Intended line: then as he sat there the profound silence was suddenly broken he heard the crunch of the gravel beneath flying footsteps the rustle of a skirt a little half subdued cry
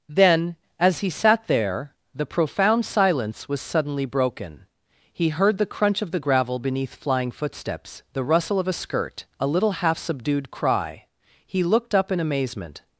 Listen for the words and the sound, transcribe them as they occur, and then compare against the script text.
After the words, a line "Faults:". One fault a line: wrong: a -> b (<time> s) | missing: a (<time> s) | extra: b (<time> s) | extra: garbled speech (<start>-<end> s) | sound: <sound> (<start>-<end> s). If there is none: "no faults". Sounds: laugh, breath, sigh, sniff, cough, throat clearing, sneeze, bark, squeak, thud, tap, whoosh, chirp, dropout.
then as he sat there the profound silence was suddenly broken he heard the crunch of the gravel beneath flying footsteps the rustle of a skirt a little half subdued cry he looked up in amazement
Faults:
extra: he looked up in amazement (11.5 s)